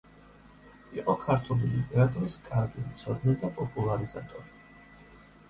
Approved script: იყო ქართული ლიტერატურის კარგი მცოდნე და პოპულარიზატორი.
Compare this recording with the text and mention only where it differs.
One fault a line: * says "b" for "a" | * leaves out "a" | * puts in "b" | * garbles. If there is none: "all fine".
all fine